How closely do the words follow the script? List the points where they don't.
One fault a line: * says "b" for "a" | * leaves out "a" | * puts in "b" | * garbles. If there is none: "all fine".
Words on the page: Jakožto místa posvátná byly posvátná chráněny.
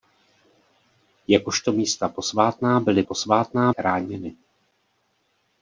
all fine